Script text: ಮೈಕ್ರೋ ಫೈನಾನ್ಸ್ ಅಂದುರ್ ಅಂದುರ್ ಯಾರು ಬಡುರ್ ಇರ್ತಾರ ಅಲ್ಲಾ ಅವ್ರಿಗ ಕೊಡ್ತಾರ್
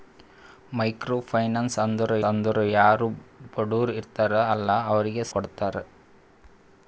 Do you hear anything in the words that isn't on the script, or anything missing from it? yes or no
no